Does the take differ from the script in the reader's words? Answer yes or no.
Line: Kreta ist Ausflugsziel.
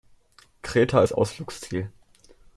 no